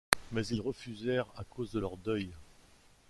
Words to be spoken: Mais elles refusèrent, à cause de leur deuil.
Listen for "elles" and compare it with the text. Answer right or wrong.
wrong